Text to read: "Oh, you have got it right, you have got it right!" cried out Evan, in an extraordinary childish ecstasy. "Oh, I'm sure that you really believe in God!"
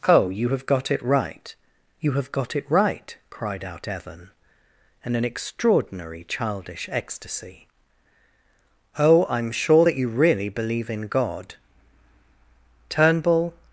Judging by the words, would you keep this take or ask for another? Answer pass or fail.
fail